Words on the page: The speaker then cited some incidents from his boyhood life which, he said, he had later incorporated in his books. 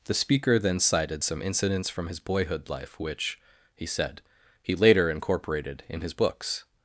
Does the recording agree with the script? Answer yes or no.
no